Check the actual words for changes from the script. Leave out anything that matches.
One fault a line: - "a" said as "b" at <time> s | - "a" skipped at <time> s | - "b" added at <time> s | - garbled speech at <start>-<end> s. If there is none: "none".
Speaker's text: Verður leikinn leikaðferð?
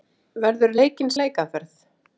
none